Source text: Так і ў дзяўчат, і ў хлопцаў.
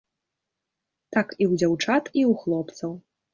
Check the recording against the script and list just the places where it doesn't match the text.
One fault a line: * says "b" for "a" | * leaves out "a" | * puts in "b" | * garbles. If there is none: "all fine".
all fine